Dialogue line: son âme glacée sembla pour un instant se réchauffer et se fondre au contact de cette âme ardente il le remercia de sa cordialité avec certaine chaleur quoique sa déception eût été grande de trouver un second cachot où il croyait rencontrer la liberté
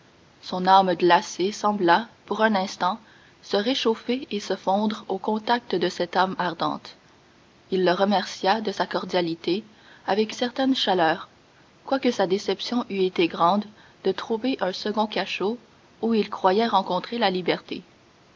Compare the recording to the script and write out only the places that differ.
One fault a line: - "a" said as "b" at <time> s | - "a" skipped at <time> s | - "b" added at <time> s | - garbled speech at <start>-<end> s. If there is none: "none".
none